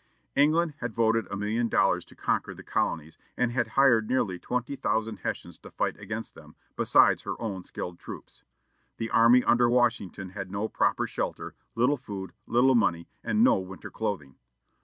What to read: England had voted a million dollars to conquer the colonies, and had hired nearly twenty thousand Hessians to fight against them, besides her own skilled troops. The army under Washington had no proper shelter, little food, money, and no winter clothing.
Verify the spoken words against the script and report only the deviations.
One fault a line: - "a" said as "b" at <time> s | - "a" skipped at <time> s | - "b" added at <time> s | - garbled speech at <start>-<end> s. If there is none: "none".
- "little" added at 12.4 s